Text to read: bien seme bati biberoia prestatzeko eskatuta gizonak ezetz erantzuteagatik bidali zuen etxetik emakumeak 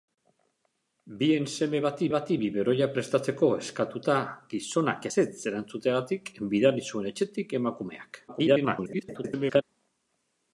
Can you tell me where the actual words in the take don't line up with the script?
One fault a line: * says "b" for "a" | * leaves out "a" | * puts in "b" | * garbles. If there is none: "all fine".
* puts in "bati"
* garbles